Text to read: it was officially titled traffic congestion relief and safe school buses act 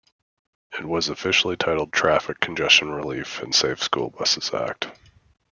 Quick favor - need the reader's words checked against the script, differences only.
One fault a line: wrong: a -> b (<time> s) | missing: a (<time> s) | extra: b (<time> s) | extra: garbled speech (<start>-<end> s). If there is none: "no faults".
no faults